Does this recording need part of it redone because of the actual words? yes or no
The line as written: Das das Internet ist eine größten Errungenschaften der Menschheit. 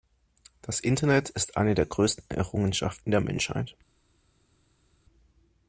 yes